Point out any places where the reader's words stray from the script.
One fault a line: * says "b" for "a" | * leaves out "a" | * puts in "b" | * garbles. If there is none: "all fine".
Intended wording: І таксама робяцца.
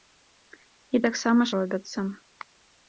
all fine